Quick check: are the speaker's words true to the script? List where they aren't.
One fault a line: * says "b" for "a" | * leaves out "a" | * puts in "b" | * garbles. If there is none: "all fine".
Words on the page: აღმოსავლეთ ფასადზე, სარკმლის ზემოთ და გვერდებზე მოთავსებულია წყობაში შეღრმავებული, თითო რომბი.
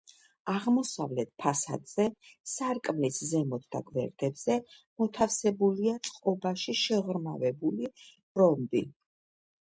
* leaves out "თითო"